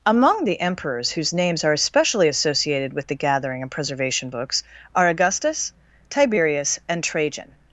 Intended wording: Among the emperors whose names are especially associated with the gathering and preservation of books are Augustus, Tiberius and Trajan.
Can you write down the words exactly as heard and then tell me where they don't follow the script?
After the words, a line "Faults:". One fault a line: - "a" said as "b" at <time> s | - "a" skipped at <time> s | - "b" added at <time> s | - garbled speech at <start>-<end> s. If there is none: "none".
Among the emperors whose names are especially associated with the gathering and preservation books are Augustus, Tiberius and Trajan.
Faults:
- "of" skipped at 4.3 s